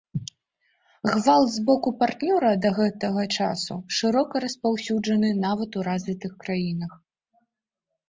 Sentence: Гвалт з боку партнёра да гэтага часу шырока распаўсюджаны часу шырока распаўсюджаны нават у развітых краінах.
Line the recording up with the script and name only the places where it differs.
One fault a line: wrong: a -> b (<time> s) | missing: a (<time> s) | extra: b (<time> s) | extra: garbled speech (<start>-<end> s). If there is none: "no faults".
missing: часу шырока распаўсюджаны (5.3 s)